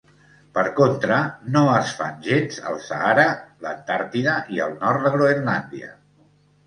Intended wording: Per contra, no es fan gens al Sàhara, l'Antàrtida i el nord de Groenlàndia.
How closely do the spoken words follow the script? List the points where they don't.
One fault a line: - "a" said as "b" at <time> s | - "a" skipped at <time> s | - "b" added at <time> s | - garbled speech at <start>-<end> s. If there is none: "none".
none